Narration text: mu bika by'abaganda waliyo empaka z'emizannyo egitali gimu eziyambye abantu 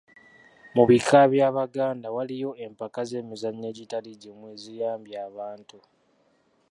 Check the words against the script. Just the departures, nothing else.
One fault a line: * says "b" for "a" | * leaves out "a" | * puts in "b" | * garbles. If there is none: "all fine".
all fine